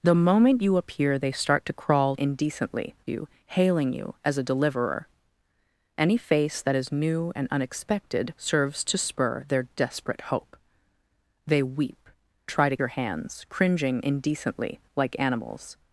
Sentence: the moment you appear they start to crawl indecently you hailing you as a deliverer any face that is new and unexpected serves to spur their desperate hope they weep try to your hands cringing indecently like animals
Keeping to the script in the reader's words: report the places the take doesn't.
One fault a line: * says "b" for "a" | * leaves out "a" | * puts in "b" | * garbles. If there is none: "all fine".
all fine